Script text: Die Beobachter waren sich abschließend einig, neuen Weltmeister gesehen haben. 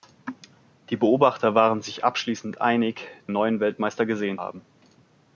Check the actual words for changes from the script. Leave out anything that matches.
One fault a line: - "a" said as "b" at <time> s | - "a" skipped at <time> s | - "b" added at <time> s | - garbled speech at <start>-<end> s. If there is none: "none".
none